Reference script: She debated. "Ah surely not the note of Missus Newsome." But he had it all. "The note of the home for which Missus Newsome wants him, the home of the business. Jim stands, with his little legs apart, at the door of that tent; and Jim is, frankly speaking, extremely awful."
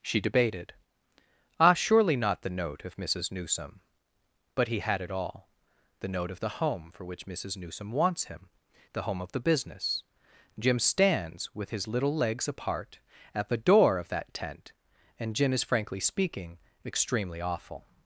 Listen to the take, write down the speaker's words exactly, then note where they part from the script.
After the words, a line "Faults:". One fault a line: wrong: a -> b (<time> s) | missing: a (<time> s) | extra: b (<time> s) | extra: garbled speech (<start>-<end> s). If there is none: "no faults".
She debated. "Ah surely not the note of Missus Newsome." But he had it all. "The note of the home for which Missus Newsome wants him, the home of the business. Jim stands, with his little legs apart, at the door of that tent; and Jim is, frankly speaking, extremely awful."
Faults:
no faults